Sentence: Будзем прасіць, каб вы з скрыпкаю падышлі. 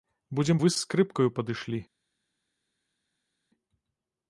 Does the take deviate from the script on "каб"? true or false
true